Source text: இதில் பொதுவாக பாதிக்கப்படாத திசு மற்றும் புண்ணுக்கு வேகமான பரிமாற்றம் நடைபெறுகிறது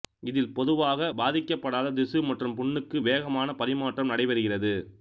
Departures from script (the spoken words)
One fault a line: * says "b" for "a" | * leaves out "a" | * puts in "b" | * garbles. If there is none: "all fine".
all fine